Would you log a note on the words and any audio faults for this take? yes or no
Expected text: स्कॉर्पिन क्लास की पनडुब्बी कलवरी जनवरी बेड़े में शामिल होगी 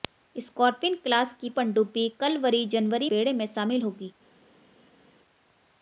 no